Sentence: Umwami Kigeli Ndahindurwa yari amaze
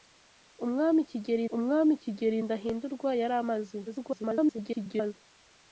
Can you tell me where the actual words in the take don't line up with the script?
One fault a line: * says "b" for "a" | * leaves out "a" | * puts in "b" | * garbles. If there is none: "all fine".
* puts in "umwami Kigeli"
* garbles